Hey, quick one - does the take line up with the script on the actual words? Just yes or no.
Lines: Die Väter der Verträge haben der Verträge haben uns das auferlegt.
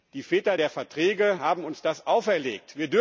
no